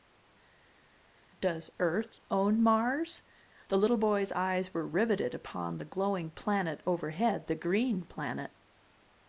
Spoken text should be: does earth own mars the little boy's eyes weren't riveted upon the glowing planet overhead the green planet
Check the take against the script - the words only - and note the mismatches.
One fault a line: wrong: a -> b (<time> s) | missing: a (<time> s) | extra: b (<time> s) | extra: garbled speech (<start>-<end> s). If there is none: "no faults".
wrong: weren't -> were (4.7 s)